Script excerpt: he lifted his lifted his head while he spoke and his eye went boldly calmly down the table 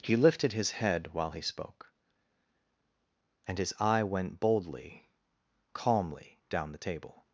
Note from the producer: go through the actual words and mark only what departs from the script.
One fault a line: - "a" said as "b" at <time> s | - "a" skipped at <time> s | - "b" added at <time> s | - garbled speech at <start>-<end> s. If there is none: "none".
- "lifted his" skipped at 0.7 s